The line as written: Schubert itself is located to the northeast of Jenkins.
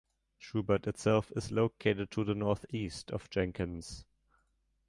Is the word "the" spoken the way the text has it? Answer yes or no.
yes